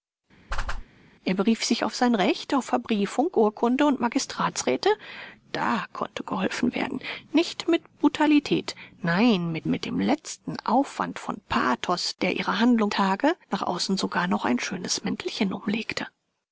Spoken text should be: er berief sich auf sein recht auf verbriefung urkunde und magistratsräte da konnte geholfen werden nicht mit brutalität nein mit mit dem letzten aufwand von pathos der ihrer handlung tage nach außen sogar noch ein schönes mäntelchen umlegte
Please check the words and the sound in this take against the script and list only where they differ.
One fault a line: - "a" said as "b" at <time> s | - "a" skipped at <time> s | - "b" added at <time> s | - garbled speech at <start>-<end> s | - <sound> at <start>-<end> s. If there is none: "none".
- whoosh at 0.5-0.9 s